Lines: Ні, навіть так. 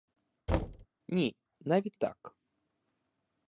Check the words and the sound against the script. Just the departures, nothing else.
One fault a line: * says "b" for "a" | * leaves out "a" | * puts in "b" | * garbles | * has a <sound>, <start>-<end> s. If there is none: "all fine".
* has a thud, 0.5-0.9 s